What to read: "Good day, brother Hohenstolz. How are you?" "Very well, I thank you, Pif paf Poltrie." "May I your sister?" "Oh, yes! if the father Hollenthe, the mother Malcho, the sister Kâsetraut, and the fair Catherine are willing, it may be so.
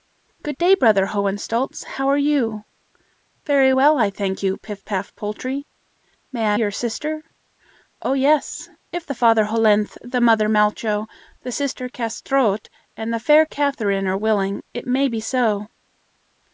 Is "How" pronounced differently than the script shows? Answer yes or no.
no